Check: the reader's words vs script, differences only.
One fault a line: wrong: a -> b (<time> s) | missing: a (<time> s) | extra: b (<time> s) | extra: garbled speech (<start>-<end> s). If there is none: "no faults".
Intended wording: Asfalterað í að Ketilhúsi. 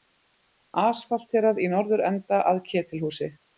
extra: norðurenda (1.8 s)